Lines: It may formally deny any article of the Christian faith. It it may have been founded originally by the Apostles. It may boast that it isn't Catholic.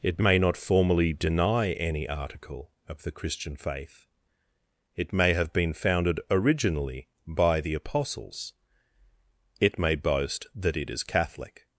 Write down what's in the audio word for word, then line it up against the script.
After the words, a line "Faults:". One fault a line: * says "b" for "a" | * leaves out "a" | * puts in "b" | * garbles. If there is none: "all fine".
It may not formally deny any article of the Christian faith. It may have been founded originally by the Apostles. It may boast that it is Catholic.
Faults:
* puts in "not"
* leaves out "it"
* says "is" for "isn't"